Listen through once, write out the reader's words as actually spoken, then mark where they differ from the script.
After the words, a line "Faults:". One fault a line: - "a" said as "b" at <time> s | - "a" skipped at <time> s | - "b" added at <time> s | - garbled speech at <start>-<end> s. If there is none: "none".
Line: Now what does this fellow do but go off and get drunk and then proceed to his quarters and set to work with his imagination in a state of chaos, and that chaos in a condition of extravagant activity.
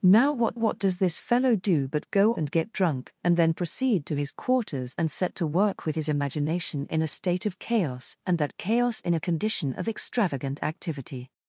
Now what what does this fellow do but go and get drunk and then proceed to his quarters and set to work with his imagination in a state of chaos, and that chaos in a condition of extravagant activity.
Faults:
- "what" added at 0.5 s
- "off" skipped at 2.3 s